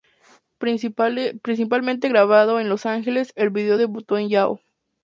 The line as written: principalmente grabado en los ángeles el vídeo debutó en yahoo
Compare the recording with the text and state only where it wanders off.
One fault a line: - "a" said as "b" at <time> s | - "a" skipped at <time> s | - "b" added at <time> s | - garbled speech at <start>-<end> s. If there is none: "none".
none